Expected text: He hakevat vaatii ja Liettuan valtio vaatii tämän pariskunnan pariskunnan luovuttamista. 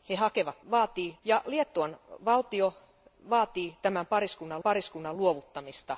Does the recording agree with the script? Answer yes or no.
yes